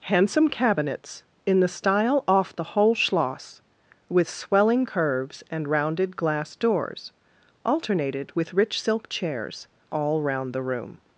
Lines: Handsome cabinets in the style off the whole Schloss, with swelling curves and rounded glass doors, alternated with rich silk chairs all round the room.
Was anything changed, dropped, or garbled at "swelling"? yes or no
no